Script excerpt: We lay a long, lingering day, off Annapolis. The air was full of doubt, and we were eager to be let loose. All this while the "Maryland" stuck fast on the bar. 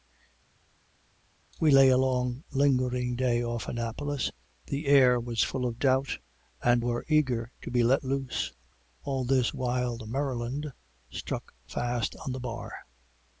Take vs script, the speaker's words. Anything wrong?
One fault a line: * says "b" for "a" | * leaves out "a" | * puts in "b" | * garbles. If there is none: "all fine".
* leaves out "we"